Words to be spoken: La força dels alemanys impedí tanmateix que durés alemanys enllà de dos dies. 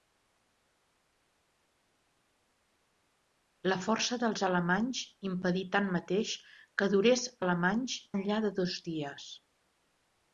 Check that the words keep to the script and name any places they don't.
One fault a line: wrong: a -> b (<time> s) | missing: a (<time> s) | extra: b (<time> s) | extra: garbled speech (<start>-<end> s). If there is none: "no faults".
no faults